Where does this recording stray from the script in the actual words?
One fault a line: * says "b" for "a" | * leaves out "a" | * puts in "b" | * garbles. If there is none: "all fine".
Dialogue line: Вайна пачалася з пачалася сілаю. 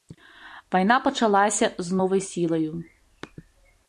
* says "новай" for "пачалася"